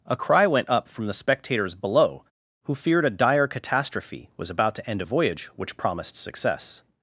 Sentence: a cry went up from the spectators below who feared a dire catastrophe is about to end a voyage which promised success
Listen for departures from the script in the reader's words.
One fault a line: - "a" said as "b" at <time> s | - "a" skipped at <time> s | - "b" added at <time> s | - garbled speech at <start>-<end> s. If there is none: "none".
- "is" said as "was" at 4.4 s